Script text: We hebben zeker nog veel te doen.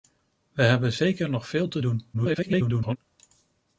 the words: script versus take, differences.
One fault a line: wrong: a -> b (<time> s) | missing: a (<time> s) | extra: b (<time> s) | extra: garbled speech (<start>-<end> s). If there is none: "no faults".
extra: garbled speech (2.1-3.0 s)